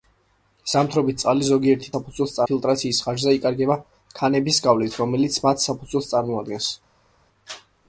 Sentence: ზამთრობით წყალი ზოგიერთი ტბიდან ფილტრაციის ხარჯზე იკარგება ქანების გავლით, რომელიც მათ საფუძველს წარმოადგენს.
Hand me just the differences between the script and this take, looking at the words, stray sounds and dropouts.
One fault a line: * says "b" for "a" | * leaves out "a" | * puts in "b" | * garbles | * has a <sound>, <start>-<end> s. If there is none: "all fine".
* says "საფუძველს" for "ტბიდან"